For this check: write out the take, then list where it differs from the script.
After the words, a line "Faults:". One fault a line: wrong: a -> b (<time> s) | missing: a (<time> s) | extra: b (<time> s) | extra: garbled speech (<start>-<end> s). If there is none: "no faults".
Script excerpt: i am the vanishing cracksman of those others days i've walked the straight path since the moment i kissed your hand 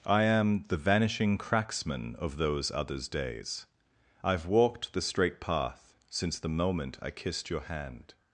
i am the vanishing cracksman of those others days i've walked the straight path since the moment i kissed your hand
Faults:
no faults